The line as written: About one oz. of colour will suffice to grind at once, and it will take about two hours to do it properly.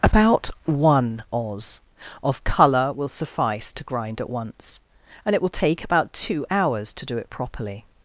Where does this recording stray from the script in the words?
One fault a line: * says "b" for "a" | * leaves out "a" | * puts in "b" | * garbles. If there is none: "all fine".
all fine